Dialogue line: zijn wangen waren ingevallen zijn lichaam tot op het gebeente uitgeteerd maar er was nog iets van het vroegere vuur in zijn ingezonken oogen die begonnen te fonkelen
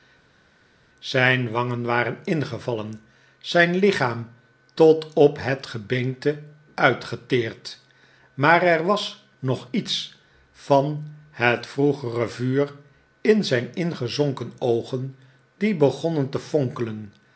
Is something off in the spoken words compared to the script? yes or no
no